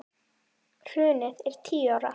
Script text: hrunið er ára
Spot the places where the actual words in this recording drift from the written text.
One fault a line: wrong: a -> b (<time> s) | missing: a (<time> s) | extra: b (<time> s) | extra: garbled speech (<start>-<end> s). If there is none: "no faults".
extra: tíu (1.7 s)